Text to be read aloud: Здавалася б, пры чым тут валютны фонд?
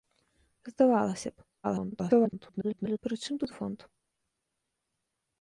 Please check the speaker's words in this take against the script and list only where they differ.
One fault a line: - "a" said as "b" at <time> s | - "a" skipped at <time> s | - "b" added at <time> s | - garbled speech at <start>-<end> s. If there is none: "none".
- garbled speech at 1.6-3.0 s
- "валютны" skipped at 3.5 s